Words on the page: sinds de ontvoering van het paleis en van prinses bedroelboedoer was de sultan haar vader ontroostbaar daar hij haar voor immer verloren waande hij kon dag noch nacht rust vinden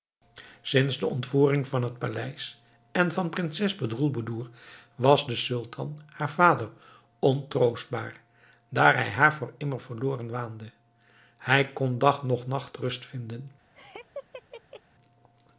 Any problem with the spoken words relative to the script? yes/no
no